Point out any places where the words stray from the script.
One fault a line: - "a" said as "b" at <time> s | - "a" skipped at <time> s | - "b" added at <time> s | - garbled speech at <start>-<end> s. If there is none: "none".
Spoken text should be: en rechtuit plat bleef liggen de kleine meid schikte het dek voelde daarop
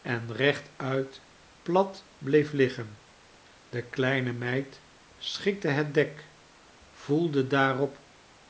none